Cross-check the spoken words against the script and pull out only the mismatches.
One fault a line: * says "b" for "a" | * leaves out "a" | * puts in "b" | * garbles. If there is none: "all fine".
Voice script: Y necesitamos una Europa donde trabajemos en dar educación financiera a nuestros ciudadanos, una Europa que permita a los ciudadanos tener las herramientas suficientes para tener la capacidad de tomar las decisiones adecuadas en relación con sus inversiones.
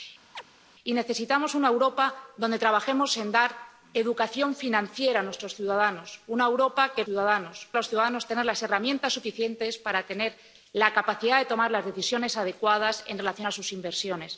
* says "ciudadanos" for "permita"